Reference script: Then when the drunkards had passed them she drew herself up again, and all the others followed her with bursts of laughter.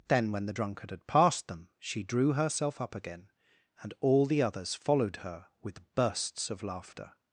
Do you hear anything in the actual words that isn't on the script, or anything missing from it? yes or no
yes